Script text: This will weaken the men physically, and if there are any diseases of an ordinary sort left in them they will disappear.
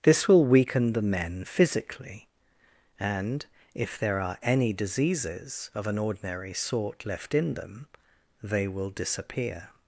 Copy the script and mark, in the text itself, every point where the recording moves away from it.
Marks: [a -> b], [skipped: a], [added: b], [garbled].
This will weaken the men physically, and if there are any diseases of an ordinary sort left in them they will disappear.